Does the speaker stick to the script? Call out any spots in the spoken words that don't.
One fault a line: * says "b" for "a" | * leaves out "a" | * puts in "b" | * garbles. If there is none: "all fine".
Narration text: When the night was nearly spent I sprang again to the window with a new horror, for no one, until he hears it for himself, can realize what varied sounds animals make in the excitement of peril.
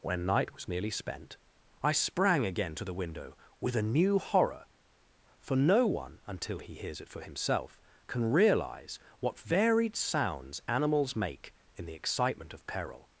* leaves out "the"